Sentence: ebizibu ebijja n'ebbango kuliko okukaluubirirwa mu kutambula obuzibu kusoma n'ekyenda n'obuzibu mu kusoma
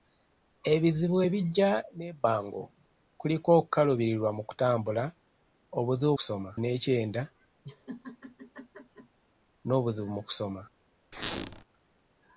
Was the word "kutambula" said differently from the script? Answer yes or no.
no